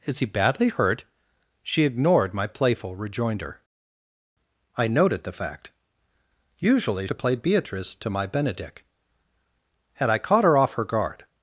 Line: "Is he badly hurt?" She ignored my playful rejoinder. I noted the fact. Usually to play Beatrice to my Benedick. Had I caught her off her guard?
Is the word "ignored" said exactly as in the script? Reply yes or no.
yes